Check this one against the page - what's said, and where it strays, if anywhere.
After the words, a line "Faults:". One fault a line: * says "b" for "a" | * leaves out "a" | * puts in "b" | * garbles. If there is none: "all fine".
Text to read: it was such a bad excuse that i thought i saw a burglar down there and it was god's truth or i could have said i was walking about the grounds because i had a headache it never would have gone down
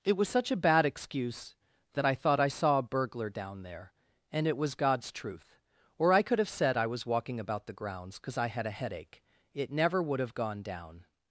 it was such a bad excuse that i thought i saw a burglar down there and it was god's truth or i could have said i was walking about the grounds because i had a headache it never would have gone down
Faults:
all fine